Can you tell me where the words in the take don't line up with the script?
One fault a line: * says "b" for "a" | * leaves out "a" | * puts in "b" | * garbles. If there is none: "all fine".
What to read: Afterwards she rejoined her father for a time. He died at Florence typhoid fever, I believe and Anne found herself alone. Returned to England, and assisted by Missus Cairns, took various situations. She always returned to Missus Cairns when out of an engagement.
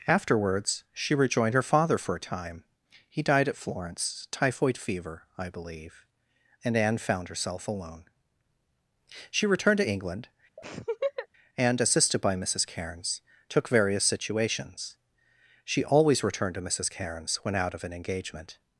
* puts in "She"